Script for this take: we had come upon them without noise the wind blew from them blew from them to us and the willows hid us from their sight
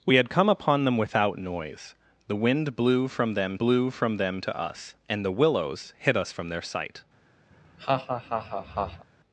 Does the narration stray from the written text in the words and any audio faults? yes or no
yes